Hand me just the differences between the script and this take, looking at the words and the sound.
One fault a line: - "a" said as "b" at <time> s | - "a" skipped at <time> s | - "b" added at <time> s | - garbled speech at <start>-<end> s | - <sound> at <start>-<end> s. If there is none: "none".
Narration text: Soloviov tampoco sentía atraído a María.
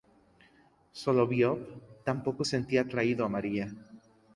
none